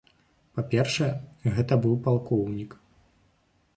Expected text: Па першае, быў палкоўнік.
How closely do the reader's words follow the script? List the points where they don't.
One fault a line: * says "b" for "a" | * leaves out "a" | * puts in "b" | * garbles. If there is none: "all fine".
* puts in "гэта"